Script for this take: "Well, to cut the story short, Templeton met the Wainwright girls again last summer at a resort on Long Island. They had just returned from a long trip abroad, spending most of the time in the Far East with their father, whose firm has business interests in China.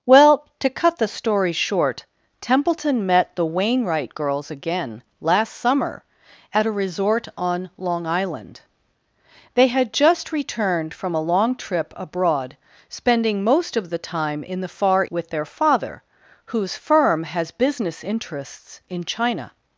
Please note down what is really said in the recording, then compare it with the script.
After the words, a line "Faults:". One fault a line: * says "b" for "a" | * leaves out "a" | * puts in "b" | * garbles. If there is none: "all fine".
"Well, to cut the story short, Templeton met the Wainwright girls again last summer at a resort on Long Island. They had just returned from a long trip abroad, spending most of the time in the Far With their father, whose firm has business interests in China.
Faults:
* leaves out "East"